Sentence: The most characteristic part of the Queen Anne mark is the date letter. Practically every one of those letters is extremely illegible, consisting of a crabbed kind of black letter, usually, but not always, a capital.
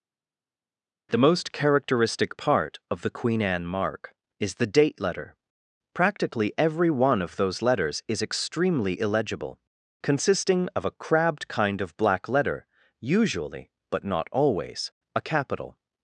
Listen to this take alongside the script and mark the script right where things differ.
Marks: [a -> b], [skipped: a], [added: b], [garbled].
The most characteristic part of the Queen Anne mark is the date letter. Practically every one of those letters is extremely illegible, consisting of a crabbed kind of black letter, usually, but not always, a capital.